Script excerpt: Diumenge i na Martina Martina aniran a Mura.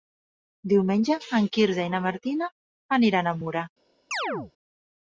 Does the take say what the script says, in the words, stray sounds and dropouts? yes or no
no